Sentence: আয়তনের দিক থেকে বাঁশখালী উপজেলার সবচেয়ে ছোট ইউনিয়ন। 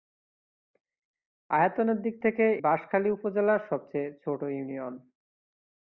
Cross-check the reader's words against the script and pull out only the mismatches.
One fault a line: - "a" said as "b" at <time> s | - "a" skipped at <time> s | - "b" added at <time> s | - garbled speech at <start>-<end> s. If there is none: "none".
none